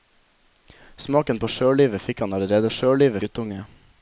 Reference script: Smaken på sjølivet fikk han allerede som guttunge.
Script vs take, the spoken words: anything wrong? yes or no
yes